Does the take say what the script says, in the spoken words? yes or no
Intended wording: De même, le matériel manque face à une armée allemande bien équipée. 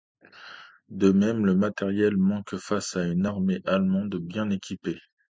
yes